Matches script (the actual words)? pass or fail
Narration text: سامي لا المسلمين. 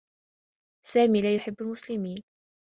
fail